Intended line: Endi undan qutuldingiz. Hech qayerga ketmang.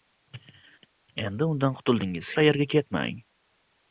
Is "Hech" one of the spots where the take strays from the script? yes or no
yes